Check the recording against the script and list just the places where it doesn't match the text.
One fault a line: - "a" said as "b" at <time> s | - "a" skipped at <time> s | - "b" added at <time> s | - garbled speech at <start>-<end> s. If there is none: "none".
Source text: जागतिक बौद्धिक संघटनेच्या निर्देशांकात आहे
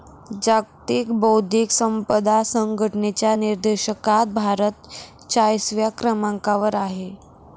- "संपदा" added at 1.7 s
- "भारत चाळीसव्या क्रमांकावर" added at 4.3 s